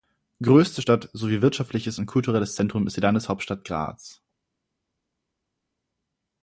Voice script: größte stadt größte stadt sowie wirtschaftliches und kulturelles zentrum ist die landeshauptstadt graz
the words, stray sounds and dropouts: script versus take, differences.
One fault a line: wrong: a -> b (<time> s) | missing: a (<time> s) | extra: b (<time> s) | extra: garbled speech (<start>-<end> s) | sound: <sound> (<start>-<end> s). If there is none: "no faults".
missing: größte stadt (1.1 s)